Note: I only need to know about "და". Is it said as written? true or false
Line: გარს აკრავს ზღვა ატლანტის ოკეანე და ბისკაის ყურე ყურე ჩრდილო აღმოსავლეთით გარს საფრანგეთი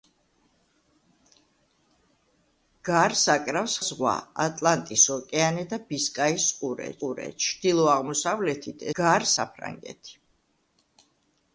true